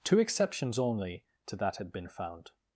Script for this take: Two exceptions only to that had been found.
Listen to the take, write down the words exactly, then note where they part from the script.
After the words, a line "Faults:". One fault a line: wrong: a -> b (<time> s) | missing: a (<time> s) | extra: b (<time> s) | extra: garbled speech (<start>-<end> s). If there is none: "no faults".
Two exceptions only to that had been found.
Faults:
no faults